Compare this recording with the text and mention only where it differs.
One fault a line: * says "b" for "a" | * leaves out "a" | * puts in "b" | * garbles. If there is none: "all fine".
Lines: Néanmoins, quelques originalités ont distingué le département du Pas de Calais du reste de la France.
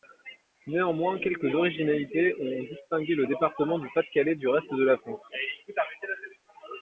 all fine